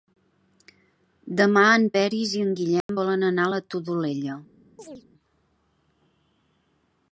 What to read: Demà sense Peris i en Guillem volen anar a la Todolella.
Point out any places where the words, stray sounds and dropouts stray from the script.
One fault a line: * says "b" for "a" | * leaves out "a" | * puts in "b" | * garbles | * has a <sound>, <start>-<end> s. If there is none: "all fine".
* says "en" for "sense"
* has a dropout, 2.8-2.9 s
* has a chirp, 4.8-5.0 s